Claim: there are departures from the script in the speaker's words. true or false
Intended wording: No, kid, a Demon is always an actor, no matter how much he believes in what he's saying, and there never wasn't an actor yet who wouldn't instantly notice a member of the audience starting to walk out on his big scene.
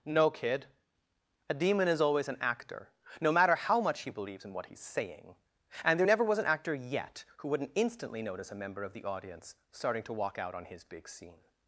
true